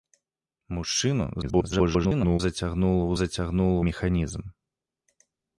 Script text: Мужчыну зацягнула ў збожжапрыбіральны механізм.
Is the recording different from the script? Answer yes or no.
yes